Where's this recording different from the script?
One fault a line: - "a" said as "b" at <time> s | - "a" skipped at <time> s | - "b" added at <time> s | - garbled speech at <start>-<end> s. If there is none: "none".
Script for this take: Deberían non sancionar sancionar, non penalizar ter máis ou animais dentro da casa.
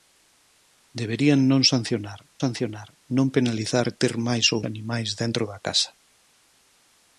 none